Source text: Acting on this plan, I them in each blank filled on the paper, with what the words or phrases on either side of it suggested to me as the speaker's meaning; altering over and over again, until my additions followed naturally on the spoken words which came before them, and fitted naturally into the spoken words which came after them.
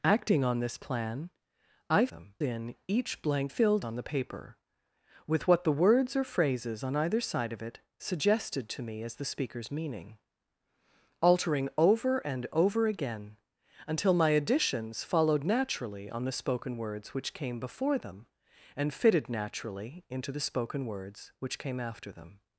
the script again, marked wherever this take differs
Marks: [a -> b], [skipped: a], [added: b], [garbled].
Acting on this plan, I them in each blank filled on the paper, with what the words or phrases on either side of it suggested to me as the speaker's meaning; altering over and over again, until my additions followed naturally on the spoken words which came before them, and fitted naturally into the spoken words which came after them.